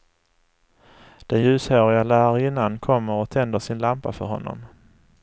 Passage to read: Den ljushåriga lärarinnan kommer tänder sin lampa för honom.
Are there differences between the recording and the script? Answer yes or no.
yes